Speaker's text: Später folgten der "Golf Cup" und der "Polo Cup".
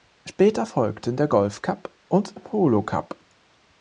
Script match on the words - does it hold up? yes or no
no